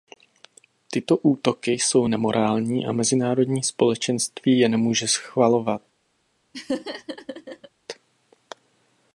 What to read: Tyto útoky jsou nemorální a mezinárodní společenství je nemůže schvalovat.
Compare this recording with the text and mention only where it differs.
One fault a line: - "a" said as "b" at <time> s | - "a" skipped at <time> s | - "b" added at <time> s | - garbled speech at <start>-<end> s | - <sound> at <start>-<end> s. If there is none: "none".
- laugh at 6.5-7.7 s